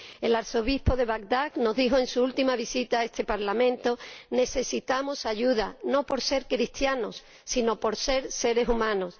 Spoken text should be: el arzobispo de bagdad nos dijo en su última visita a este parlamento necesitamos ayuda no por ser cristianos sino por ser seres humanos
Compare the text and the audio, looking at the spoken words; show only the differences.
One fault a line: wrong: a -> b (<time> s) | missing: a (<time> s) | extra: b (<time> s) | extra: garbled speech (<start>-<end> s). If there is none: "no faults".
no faults